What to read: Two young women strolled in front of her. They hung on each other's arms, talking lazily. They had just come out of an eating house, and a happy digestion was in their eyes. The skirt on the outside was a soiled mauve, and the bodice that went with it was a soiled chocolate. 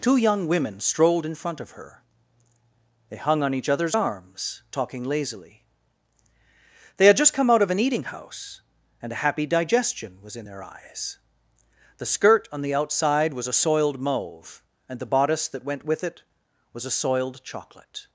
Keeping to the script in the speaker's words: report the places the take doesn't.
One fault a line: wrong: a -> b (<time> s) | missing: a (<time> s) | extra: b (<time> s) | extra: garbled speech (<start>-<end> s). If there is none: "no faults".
no faults